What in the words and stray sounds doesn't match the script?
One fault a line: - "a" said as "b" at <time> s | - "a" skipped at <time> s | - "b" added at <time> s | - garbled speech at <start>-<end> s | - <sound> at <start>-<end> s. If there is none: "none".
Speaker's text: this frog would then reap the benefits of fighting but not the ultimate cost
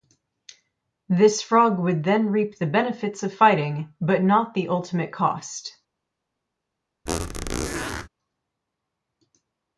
- squeak at 7.1-8.1 s